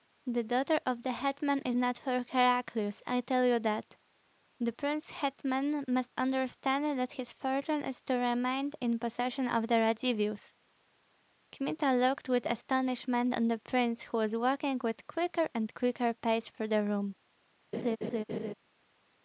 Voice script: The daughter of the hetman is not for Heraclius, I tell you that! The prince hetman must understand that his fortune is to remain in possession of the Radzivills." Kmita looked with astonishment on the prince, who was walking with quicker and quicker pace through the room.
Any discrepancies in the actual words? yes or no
no